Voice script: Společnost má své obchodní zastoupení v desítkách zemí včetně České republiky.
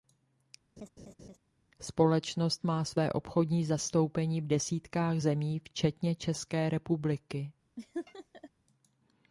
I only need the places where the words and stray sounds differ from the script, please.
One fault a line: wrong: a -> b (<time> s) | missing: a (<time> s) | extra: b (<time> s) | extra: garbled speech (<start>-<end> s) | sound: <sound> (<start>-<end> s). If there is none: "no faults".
sound: laugh (0.8-1.4 s)
sound: laugh (7.8-8.5 s)